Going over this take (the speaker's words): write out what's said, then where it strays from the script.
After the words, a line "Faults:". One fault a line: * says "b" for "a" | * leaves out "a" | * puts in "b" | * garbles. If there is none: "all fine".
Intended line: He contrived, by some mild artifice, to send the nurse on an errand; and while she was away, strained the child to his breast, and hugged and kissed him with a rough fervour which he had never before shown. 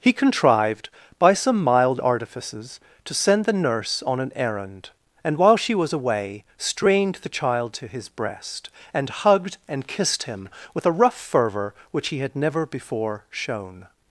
He contrived, by some mild artifices, to send the nurse on an errand; and while she was away, strained the child to his breast, and hugged and kissed him with a rough fervour which he had never before shown.
Faults:
* says "artifices" for "artifice"